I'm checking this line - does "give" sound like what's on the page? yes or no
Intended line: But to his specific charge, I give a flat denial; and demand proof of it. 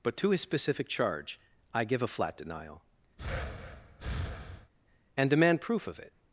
yes